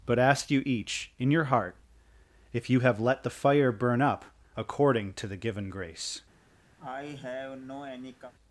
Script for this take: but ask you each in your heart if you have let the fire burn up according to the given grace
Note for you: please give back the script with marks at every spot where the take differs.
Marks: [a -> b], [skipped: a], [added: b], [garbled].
but ask you each in your heart if you have let the fire burn up according to the given grace